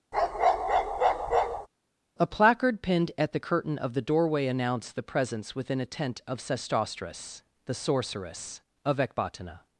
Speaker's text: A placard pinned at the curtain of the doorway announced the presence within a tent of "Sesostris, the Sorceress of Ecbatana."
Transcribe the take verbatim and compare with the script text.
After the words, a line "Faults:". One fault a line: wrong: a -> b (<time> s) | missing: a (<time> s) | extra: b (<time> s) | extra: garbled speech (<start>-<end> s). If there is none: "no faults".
A placard pinned at the curtain of the doorway announced the presence within a tent of "Sesostris, the Sorceress of Ecbatana."
Faults:
no faults